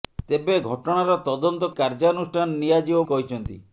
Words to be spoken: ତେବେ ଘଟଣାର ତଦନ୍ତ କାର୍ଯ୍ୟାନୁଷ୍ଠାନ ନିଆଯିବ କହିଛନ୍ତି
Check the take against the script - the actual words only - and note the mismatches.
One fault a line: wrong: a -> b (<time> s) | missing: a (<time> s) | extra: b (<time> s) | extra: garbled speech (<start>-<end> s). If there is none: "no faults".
no faults